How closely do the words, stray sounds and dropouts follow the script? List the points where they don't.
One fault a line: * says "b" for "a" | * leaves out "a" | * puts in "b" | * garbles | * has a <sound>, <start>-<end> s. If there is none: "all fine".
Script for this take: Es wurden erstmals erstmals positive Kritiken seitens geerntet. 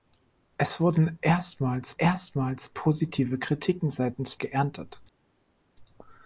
all fine